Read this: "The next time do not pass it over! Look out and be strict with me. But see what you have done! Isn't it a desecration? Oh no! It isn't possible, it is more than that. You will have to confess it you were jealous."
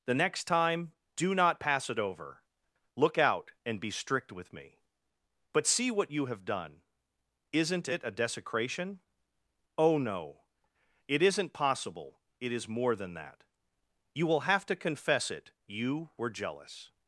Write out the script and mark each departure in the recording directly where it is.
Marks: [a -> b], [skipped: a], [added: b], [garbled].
"The next time do not pass it over! Look out and be strict with me. But see what you have done! Isn't it a desecration? Oh no! It isn't possible, it is more than that. You will have to confess it you were jealous."